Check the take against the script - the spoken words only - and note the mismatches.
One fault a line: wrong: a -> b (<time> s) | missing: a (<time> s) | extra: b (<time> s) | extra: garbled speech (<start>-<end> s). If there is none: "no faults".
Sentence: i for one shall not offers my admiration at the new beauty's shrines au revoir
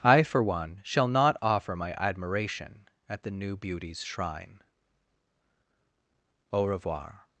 wrong: offers -> offer (1.4 s)
wrong: shrines -> shrine (4.0 s)